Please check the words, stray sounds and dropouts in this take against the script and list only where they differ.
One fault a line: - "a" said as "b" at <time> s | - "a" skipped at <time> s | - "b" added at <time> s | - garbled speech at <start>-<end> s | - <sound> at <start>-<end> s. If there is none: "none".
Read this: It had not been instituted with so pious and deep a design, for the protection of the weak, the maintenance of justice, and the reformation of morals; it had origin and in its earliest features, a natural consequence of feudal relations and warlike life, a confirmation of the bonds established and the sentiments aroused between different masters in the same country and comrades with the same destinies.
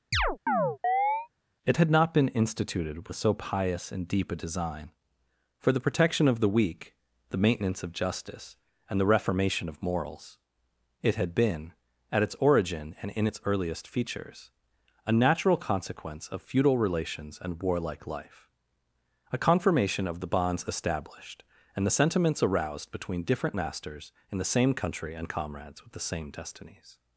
- chirp at 0.1-1.3 s
- "been at its" added at 11.3 s